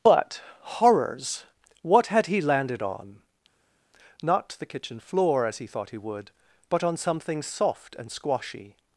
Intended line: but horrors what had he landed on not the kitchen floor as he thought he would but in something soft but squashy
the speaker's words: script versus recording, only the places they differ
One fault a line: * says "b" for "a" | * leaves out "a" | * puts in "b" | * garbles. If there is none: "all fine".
* says "on" for "in"
* says "and" for "but"